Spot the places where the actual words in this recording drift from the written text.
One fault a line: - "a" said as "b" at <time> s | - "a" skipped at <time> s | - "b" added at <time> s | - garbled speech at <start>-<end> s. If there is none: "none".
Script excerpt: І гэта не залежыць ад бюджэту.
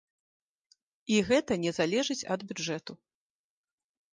none